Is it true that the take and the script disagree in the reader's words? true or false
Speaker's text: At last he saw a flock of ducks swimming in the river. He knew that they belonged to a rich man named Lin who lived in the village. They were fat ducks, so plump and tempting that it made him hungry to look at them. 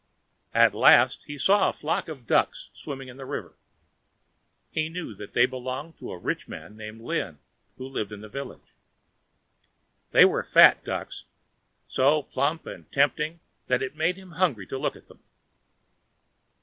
false